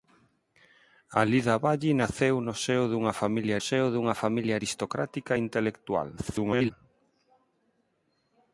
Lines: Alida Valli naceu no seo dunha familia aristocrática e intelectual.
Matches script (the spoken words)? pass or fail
fail